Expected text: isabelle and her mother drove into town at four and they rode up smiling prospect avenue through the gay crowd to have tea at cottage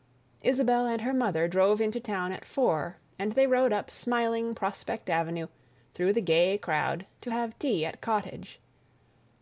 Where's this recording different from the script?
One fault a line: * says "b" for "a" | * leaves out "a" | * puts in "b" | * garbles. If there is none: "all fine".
all fine